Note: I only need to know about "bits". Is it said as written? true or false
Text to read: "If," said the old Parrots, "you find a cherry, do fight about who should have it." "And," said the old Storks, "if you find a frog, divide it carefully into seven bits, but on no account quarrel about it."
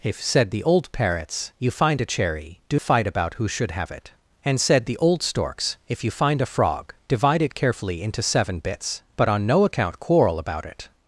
true